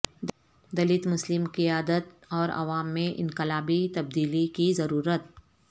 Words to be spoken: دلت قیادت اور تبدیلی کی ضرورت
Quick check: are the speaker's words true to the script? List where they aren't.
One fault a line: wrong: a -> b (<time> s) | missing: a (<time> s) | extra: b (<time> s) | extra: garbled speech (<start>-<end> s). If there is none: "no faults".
extra: مسلم (1.1 s)
extra: عوام میں انقلابی (2.5 s)